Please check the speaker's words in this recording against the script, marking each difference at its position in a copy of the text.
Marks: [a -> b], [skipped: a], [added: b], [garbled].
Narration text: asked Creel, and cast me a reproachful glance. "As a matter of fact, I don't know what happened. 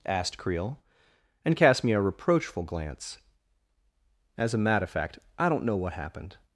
asked Creel, and cast me a reproachful glance. "As a matter of fact, I don't know what happened.